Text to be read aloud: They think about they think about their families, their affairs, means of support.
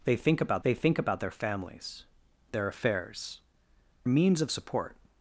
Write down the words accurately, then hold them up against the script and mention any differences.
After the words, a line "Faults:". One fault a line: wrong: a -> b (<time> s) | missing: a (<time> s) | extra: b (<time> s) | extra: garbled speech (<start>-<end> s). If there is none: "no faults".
They think about they think about their families, their affairs, means of support.
Faults:
no faults